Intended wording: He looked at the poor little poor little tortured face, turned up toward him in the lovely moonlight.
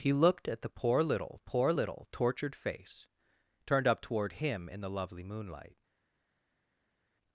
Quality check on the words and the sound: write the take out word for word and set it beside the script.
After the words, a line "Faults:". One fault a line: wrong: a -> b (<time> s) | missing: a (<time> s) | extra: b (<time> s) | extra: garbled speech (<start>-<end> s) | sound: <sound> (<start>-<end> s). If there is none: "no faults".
He looked at the poor little poor little tortured face, turned up toward him in the lovely moonlight.
Faults:
no faults